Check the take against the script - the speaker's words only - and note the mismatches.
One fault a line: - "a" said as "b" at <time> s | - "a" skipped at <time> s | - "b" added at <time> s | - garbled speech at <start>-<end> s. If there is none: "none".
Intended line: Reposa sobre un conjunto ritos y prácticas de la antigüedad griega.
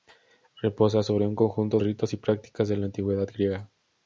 none